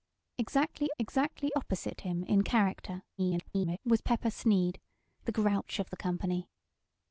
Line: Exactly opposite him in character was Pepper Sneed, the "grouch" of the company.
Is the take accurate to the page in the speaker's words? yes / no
no